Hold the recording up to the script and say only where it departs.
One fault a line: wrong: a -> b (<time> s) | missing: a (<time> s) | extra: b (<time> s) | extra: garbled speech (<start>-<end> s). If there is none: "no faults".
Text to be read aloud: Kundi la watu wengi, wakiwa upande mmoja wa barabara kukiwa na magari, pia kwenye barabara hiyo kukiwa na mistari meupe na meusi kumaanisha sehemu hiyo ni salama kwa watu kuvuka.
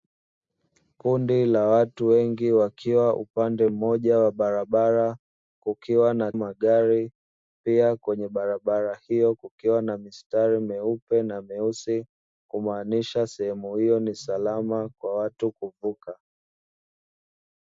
no faults